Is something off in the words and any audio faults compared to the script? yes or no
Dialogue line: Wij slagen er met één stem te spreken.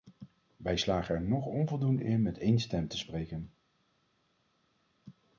yes